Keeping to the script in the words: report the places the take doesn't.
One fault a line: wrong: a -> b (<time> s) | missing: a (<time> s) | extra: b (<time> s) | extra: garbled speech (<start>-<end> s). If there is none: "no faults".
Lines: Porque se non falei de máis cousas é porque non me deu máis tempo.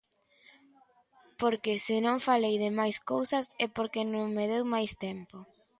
no faults